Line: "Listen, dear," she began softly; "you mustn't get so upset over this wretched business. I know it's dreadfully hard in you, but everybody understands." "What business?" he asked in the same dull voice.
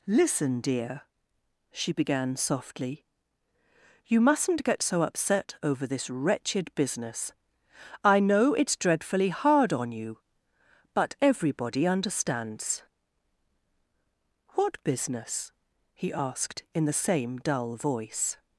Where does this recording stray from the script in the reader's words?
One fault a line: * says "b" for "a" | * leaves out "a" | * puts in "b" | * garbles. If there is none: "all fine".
* says "on" for "in"